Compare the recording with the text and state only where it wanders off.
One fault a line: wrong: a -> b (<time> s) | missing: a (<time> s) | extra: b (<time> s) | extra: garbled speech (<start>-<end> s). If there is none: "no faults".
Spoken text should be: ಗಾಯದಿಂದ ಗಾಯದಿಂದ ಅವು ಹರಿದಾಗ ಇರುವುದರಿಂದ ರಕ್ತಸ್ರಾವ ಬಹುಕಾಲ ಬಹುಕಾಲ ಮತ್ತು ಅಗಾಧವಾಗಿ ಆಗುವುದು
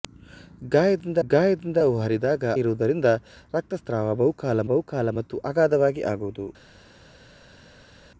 no faults